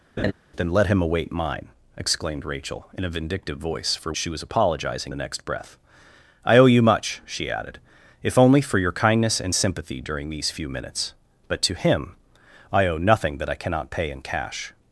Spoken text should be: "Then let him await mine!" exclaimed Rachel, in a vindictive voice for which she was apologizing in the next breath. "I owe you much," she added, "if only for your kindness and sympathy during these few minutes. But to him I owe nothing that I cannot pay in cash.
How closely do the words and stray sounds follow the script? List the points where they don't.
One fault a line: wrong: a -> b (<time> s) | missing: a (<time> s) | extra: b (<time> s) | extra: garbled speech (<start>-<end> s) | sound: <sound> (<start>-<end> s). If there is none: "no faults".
sound: laugh (0.2-0.3 s)
missing: which (4.1 s)
missing: in (5.1 s)